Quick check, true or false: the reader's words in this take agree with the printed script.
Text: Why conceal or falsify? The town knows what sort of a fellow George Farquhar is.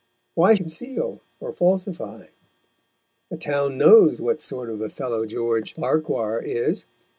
true